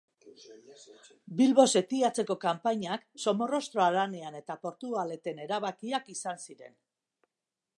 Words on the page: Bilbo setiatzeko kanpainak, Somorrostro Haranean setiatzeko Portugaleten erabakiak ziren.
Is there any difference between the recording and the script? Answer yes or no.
yes